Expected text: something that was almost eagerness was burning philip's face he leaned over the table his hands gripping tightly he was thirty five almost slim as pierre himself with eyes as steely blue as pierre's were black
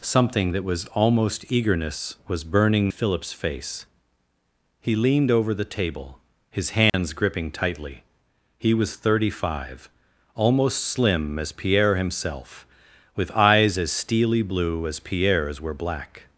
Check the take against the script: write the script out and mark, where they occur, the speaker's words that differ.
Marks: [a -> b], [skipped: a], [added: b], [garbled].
something that was almost eagerness was burning philip's face he leaned over the table his hands gripping tightly he was thirty five almost slim as pierre himself with eyes as steely blue as pierre's were black